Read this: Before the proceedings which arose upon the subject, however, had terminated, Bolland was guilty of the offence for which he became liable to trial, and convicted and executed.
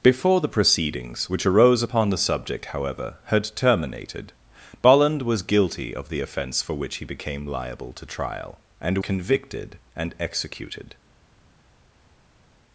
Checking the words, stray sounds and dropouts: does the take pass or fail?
pass